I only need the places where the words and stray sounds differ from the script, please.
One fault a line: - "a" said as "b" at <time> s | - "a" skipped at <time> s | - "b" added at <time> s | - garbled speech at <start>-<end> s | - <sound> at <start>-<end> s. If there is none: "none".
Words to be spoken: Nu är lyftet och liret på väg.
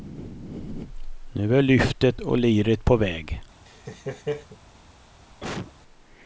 - laugh at 3.7-4.6 s
- cough at 5.3-5.7 s